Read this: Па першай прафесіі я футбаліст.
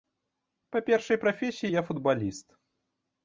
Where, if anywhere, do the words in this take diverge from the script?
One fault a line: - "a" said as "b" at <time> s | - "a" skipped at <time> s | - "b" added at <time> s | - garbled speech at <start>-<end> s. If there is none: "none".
none